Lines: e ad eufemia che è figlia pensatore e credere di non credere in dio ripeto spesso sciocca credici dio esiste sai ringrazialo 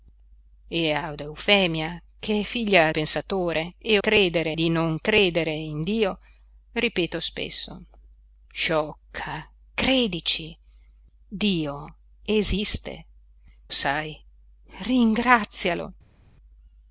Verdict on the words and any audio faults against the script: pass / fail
pass